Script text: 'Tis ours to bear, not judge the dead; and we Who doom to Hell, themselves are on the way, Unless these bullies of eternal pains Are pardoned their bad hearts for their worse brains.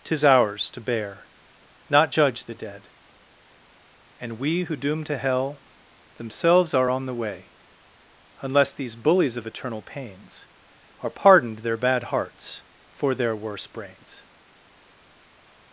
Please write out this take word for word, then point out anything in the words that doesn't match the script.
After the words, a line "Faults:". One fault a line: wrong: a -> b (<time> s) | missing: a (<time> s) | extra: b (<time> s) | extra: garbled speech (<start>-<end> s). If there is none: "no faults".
'Tis ours to bear, not judge the dead; and we Who doom to Hell, themselves are on the way, Unless these bullies of eternal pains Are pardoned their bad hearts for their worse brains.
Faults:
no faults